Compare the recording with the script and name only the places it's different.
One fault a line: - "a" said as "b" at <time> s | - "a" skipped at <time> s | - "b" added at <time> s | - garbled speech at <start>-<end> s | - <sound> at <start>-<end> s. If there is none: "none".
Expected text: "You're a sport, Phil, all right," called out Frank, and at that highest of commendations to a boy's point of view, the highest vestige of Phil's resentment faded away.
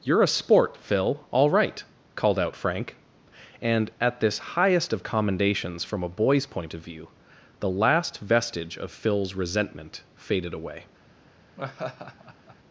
- "that" said as "this" at 4.2 s
- "to" said as "from" at 5.8 s
- "highest" said as "last" at 7.7 s
- laugh at 11.6-12.6 s